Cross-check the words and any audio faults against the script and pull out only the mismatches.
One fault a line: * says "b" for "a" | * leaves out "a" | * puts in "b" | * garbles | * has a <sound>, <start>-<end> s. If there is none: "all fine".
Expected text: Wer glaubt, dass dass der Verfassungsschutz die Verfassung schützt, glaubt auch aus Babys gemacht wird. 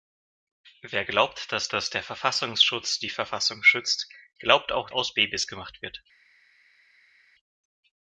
all fine